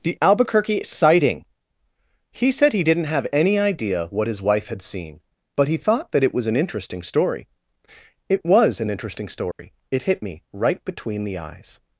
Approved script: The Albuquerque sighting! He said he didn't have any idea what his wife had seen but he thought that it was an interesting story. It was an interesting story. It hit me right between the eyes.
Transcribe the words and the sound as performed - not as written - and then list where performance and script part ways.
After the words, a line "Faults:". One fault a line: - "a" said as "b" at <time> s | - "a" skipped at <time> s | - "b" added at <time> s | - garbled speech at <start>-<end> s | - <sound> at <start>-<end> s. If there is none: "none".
The Albuquerque sighting! He said he didn't have any idea what his wife had seen but he thought that it was an interesting story. It was an interesting story. It hit me right between the eyes.
Faults:
- dropout at 9.5-9.6 s